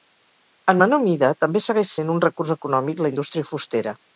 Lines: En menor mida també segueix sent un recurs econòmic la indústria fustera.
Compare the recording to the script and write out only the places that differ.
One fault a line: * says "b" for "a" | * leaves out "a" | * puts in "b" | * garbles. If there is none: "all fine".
all fine